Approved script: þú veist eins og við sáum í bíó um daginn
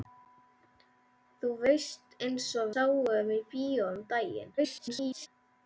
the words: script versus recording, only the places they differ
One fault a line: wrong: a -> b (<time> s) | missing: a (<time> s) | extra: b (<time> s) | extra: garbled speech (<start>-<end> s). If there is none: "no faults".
missing: við (2.7 s)
extra: garbled speech (4.6-5.3 s)